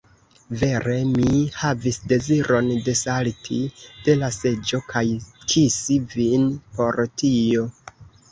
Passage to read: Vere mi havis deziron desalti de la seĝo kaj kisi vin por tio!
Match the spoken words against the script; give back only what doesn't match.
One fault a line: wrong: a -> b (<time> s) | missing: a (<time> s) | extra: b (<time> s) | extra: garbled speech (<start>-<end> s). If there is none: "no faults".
no faults